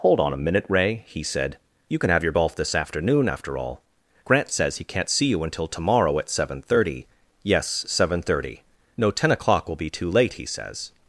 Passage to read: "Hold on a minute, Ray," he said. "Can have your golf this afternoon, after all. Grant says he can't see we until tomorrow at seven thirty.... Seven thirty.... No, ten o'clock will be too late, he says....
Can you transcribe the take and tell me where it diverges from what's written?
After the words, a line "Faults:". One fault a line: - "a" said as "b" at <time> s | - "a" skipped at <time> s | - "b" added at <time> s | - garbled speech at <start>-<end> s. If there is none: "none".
"Hold on a minute, Ray," he said. "You can have your golf this afternoon, after all. Grant says he can't see you until tomorrow at seven thirty.... Yes, seven thirty.... No, ten o'clock will be too late, he says....
Faults:
- "You" added at 1.9 s
- "we" said as "you" at 5.2 s
- "Yes" added at 7.4 s